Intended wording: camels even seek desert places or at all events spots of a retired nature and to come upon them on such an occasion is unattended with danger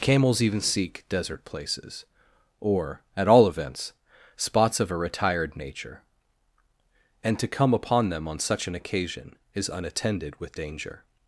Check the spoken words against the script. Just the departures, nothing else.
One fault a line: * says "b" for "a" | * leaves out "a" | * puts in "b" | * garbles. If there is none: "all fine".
all fine